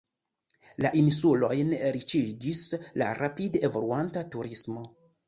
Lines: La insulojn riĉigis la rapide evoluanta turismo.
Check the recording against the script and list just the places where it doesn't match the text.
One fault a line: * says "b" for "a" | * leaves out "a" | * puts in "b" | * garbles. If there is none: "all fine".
all fine